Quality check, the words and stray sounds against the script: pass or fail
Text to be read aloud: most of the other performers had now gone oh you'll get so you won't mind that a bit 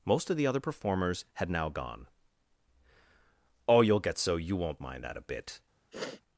fail